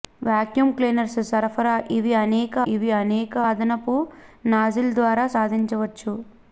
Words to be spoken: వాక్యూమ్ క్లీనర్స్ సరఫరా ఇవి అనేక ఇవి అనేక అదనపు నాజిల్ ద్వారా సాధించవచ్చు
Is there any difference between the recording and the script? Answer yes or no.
no